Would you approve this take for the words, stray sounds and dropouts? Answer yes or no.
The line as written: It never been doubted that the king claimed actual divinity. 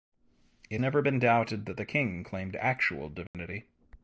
no